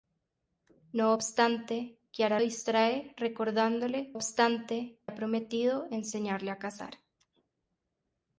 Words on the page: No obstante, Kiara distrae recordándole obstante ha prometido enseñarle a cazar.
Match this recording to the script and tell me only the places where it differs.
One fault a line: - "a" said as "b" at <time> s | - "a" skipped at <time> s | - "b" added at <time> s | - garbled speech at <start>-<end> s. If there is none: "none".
none